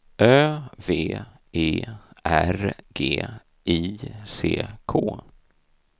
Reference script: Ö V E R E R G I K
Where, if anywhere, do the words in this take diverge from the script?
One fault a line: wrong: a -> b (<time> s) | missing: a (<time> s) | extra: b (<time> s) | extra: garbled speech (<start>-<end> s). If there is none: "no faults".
missing: E R (2.8 s)
extra: C (4.2 s)